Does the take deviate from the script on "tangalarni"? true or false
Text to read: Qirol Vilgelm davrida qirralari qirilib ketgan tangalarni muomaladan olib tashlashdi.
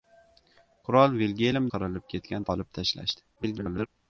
true